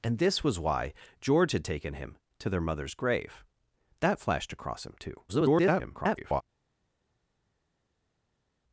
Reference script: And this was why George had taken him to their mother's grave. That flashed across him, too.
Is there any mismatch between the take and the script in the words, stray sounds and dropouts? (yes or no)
yes